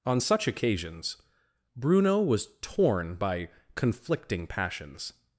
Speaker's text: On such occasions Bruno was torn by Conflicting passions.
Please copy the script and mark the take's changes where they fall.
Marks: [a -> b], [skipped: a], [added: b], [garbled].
On such occasions Bruno was torn by Conflicting passions.